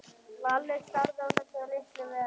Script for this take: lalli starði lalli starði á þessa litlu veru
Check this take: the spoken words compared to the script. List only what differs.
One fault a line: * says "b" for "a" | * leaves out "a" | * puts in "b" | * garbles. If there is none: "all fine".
* leaves out "lalli starði"